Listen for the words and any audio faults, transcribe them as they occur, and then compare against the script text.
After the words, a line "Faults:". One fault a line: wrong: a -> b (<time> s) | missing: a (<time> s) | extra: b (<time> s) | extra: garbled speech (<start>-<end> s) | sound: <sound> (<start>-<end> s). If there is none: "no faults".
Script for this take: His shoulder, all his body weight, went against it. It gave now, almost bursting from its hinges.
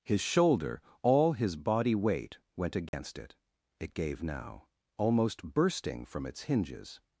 His shoulder, all his body weight, went against it. It gave now, almost bursting from its hinges.
Faults:
sound: dropout (2.9-2.9 s)